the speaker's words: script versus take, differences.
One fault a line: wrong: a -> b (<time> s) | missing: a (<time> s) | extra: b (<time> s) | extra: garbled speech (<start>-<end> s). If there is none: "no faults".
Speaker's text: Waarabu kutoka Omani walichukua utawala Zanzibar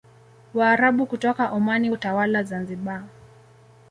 missing: walichukua (1.9 s)